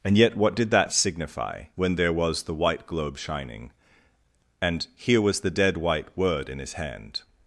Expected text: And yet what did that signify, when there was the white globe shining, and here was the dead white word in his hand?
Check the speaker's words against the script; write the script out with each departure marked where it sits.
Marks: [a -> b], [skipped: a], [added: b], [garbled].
And yet what did that signify, when there was the white globe shining, and here was the dead white word in his hand?